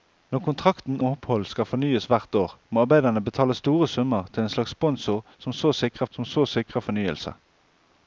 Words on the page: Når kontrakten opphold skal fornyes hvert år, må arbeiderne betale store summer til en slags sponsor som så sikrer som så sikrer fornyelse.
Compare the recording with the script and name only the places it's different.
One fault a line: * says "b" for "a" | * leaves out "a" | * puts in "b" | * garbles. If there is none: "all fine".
all fine